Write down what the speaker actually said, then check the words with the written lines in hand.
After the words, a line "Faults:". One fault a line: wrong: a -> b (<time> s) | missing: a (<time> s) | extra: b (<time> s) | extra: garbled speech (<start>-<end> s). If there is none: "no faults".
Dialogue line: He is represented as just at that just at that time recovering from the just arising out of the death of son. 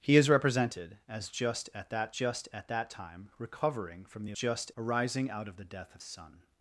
He is represented as just at that just at that time recovering from the just arising out of the death of son.
Faults:
no faults